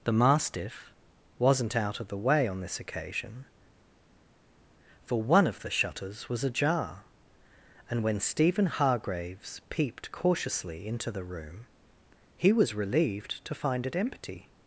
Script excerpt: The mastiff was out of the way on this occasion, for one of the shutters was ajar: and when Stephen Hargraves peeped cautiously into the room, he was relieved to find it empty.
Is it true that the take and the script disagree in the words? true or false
true